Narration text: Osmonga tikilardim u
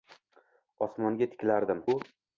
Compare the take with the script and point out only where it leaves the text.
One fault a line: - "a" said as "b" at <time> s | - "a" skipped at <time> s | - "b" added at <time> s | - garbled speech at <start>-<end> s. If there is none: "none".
none